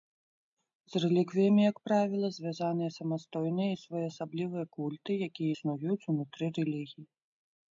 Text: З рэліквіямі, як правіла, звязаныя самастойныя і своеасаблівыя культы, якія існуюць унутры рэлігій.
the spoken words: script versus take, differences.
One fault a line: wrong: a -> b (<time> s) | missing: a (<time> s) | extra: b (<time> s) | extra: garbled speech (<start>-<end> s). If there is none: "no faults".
no faults